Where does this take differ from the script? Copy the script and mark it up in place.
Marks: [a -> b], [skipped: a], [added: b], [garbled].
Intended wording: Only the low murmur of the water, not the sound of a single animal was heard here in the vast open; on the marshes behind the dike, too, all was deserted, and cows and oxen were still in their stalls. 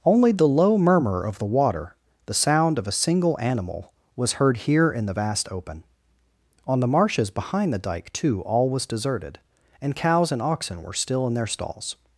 Only the low murmur of the water, [skipped: not] the sound of a single animal was heard here in the vast open; on the marshes behind the dike, too, all was deserted, and cows and oxen were still in their stalls.